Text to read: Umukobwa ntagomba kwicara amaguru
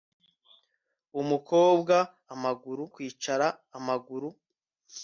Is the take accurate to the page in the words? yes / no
no